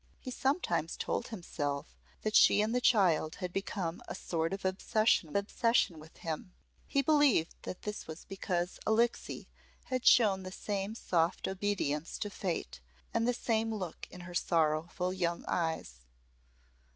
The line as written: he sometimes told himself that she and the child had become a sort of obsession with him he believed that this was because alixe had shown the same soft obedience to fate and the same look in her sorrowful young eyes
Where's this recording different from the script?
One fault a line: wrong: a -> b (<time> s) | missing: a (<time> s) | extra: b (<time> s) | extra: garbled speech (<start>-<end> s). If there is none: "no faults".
extra: obsession (5.4 s)